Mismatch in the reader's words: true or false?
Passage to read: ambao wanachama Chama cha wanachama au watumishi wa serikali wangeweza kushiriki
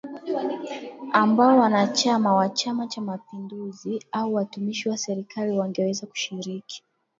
true